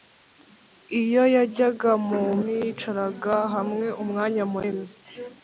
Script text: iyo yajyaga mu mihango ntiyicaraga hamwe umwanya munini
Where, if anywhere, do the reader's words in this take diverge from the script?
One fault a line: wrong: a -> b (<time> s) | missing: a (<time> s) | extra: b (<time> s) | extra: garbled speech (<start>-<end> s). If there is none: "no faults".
missing: mihango (2.2 s)